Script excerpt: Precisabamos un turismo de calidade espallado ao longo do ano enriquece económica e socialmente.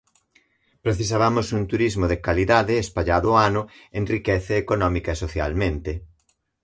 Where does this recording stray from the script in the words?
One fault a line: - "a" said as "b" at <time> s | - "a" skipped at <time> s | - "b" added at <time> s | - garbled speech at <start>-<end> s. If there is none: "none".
- "ao longo" skipped at 3.3 s